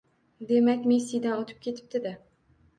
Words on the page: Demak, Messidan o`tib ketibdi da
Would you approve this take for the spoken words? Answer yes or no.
yes